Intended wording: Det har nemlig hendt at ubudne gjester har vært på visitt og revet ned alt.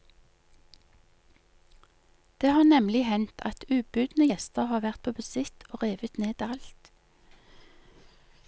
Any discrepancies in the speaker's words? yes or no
no